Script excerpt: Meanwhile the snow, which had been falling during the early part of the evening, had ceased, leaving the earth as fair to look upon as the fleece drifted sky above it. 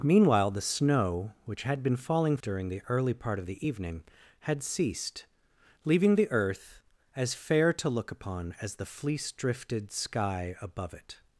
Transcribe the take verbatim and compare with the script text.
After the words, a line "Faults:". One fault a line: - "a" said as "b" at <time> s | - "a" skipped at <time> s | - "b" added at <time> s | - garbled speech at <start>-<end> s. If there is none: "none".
Meanwhile the snow, which had been falling during the early part of the evening, had ceased, leaving the earth as fair to look upon as the fleece drifted sky above it.
Faults:
none